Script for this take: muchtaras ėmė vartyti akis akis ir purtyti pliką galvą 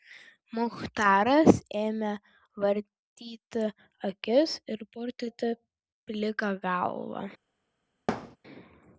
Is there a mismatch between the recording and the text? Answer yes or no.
yes